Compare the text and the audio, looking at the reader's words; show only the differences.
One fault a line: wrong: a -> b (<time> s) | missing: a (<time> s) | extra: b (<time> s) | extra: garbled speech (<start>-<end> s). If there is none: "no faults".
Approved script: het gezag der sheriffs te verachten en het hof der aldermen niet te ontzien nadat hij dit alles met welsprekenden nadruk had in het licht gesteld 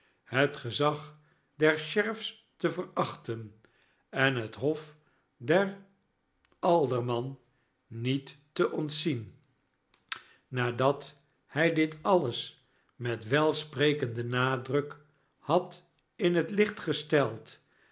no faults